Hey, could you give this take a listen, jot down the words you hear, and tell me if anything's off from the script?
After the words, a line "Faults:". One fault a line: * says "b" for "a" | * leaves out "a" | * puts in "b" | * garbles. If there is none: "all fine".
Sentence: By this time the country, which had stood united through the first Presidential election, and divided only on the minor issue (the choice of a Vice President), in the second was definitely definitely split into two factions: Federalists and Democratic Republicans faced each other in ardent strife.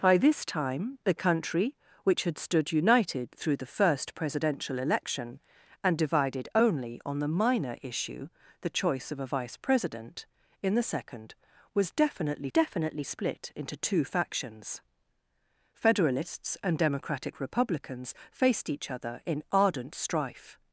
By this time the country, which had stood united through the first Presidential election, and divided only on the minor issue (the choice of a Vice President), in the second was definitely definitely split into two factions: Federalists and Democratic Republicans faced each other in ardent strife.
Faults:
all fine